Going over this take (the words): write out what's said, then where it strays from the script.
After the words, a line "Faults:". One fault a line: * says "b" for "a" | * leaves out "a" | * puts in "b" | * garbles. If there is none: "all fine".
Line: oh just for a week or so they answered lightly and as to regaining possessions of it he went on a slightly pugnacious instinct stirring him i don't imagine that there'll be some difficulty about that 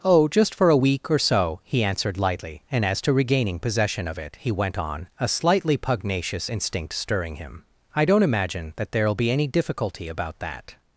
oh just for a week or so he answered lightly and as to regaining possession of it he went on a slightly pugnacious instinct stirring him i don't imagine that there'll be any difficulty about that
Faults:
* says "he" for "they"
* says "possession" for "possessions"
* says "any" for "some"